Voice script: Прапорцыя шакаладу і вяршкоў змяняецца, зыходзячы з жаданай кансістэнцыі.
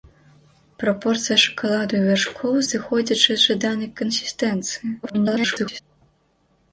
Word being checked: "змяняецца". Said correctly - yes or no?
no